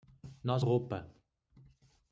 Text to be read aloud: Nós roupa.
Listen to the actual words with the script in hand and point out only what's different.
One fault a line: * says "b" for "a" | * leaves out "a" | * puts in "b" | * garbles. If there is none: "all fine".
all fine